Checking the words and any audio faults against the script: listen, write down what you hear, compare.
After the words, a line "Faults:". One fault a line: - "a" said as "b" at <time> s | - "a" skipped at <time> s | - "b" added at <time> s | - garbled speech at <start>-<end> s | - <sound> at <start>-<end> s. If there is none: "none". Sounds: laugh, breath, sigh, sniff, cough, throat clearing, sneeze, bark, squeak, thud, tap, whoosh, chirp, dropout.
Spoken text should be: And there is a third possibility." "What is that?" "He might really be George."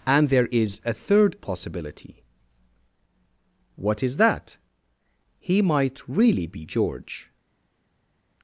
And there is a third possibility." "What is that?" "He might really be George."
Faults:
none